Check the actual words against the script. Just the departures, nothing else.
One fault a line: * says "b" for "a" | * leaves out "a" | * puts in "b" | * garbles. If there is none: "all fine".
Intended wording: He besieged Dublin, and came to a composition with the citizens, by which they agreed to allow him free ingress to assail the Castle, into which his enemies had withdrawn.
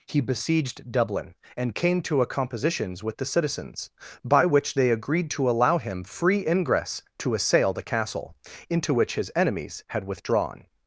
* says "compositions" for "composition"